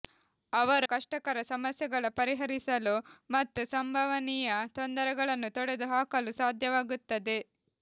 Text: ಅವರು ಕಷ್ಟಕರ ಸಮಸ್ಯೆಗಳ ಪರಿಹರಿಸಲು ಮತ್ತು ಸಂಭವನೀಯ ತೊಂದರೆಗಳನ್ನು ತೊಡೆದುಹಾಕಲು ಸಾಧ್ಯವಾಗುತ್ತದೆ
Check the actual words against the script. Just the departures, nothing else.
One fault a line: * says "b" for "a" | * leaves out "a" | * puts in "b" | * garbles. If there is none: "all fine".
all fine